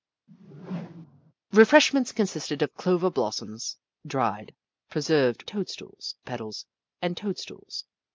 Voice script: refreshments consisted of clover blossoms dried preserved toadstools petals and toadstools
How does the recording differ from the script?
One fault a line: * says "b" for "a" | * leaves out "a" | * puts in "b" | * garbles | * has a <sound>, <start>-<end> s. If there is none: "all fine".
* has a whoosh, 0.3-1.3 s